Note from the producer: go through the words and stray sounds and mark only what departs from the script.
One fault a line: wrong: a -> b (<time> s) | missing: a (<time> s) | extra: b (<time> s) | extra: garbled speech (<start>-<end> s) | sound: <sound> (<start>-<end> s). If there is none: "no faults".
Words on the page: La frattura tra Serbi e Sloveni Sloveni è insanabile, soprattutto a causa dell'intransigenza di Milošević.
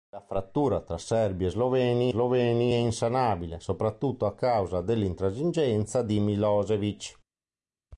no faults